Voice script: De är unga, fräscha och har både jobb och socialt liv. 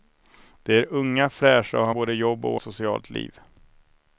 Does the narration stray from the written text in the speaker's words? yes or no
no